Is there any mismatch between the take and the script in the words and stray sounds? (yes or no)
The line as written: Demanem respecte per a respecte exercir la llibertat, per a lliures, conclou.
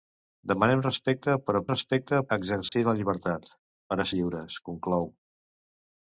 yes